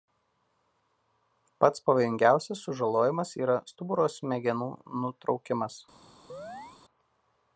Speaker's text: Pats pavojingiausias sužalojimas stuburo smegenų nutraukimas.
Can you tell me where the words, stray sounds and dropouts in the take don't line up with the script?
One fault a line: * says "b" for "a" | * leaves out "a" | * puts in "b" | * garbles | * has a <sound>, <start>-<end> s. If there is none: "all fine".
* puts in "yra"
* has a chirp, 6.3-6.8 s